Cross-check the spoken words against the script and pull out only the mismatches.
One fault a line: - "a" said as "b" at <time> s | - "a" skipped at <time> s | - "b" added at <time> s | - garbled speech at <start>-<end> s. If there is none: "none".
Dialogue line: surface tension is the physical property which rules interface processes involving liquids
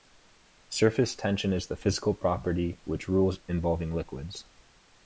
- "interface processes" skipped at 3.4 s